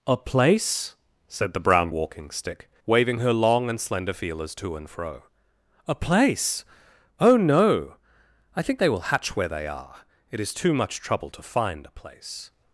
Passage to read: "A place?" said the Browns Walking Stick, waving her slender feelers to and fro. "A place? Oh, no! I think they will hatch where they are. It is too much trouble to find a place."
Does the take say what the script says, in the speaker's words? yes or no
no